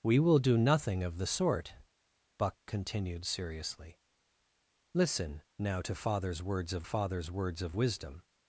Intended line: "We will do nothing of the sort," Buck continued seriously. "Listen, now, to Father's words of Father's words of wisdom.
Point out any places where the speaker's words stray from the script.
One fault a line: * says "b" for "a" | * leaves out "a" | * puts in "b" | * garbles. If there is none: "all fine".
all fine